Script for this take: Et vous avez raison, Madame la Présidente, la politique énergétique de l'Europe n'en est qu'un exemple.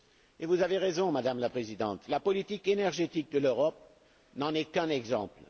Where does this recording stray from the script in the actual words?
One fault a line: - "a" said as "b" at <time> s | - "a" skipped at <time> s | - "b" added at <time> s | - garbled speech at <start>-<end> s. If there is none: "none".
none